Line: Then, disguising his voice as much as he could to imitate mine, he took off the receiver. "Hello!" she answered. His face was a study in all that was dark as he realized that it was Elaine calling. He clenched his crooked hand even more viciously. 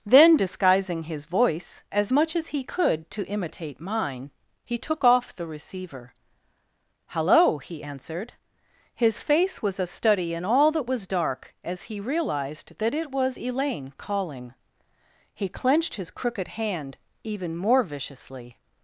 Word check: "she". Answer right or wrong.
wrong